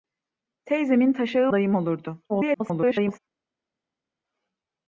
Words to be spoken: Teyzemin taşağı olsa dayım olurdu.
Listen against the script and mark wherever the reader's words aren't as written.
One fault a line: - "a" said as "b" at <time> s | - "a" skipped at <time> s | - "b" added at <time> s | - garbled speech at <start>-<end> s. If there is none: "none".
- "olsa" skipped at 1.5 s
- garbled speech at 2.3-3.2 s